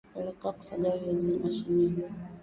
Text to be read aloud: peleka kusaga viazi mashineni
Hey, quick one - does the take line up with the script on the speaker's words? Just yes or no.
yes